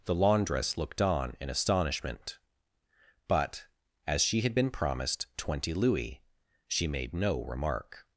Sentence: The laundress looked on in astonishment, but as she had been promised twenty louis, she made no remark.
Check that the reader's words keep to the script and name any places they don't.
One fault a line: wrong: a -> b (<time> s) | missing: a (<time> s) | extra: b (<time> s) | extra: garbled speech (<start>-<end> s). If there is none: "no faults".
no faults